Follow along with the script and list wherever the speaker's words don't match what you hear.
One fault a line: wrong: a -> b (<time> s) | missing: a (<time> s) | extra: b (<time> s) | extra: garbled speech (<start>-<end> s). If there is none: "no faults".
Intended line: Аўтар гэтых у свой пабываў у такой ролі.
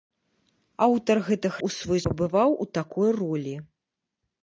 no faults